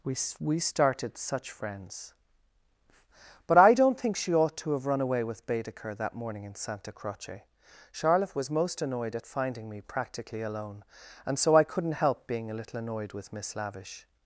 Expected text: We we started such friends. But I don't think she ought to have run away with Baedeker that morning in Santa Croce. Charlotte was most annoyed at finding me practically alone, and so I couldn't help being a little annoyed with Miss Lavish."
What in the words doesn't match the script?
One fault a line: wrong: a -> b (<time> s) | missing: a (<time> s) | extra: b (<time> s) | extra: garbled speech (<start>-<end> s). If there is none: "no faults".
no faults